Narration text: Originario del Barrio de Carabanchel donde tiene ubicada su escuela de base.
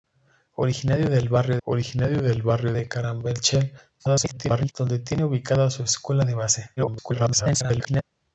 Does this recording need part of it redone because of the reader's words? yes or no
yes